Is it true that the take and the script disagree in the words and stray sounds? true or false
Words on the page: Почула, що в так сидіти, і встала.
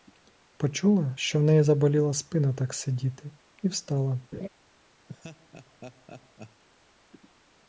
true